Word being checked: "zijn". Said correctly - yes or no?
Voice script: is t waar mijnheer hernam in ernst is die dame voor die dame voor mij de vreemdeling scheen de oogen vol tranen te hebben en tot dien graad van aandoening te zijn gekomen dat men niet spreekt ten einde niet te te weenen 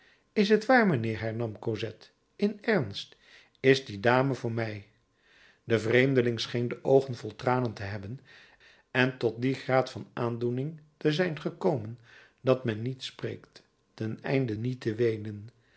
yes